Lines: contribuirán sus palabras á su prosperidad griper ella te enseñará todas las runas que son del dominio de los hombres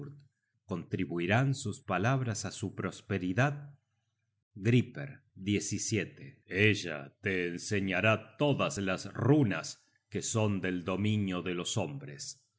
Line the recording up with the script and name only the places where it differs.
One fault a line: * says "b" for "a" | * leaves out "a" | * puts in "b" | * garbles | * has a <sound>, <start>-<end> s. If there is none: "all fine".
all fine